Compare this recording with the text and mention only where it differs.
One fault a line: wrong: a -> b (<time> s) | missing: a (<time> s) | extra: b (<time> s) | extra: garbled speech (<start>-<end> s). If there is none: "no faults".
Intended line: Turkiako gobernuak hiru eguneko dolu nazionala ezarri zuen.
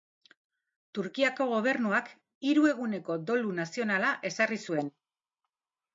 no faults